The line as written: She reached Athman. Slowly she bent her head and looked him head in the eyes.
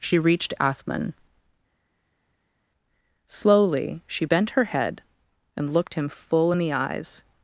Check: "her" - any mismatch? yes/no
no